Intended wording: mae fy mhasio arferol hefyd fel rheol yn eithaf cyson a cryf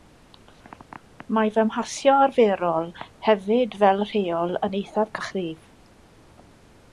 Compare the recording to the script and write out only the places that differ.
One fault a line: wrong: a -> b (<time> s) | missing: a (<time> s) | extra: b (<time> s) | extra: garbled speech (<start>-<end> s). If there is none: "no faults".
missing: cyson (5.1 s)